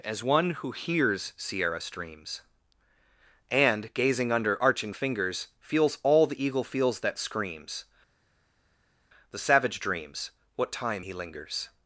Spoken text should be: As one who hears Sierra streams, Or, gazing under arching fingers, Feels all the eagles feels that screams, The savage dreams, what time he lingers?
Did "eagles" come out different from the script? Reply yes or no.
yes